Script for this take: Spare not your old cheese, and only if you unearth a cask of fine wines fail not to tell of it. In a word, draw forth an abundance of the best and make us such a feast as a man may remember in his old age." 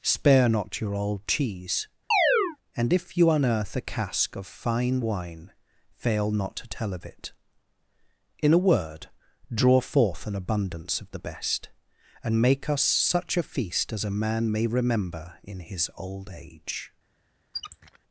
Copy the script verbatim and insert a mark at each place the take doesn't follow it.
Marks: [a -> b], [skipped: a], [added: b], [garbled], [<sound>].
Spare not your old cheese, [chirp] and [skipped: only] if you unearth a cask of fine [wines -> wine] fail not to tell of it. In a word, draw forth an abundance of the best and make us such a feast as a man may remember in his old age." [squeak]